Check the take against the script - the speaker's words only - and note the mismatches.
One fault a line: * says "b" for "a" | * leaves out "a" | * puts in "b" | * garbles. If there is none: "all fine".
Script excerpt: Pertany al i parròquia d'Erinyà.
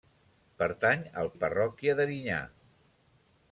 all fine